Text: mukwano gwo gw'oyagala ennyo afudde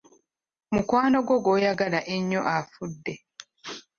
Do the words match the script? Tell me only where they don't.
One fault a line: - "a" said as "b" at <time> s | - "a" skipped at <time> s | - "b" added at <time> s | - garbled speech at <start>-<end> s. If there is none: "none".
none